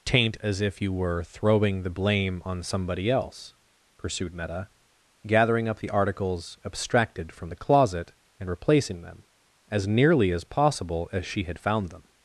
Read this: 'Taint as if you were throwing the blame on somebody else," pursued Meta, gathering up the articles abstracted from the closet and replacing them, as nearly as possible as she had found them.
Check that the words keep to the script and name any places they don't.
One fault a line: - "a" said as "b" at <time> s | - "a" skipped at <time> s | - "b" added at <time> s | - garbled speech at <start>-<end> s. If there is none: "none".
none